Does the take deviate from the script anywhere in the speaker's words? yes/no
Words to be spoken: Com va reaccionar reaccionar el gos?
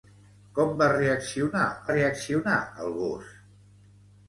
no